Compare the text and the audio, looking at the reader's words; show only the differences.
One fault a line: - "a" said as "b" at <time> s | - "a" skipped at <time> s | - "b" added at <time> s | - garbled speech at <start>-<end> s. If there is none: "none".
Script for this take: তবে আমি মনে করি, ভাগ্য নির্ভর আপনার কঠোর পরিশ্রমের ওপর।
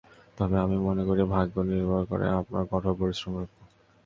- "করে" added at 2.0 s